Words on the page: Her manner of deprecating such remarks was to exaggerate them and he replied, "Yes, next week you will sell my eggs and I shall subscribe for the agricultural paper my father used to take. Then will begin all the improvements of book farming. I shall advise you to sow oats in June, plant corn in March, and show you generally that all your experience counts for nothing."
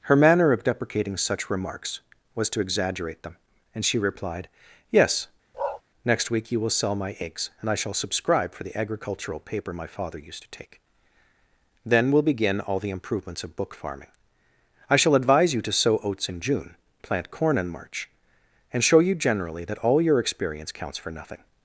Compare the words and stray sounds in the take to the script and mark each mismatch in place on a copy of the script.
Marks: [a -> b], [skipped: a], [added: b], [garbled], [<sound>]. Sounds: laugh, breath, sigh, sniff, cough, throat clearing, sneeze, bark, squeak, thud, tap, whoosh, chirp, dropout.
Her manner of deprecating such remarks was to exaggerate them and [he -> she] replied, "Yes, [bark] next week you will sell my eggs and I shall subscribe for the agricultural paper my father used to take. Then will begin all the improvements of book farming. I shall advise you to sow oats in June, plant corn in March, and show you generally that all your experience counts for nothing."